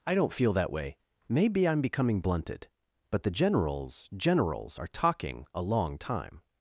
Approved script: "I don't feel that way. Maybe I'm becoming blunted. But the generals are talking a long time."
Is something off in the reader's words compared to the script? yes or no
yes